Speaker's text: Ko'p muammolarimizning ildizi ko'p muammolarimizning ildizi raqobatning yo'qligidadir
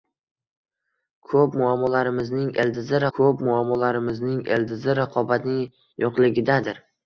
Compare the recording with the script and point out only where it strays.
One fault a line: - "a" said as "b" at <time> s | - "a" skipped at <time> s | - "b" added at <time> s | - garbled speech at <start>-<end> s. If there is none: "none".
none